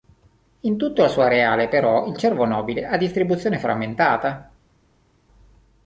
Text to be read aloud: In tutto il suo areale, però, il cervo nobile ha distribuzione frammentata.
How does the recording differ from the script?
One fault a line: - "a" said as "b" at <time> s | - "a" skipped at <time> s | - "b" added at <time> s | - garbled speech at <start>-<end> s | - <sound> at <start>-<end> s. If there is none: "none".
none